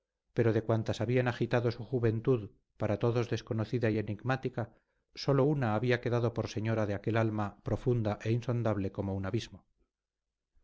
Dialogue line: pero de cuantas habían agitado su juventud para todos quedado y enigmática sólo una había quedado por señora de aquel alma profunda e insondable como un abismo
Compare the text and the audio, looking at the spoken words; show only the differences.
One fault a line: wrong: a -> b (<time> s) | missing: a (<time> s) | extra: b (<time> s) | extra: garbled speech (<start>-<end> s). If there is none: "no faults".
wrong: quedado -> desconocida (3.3 s)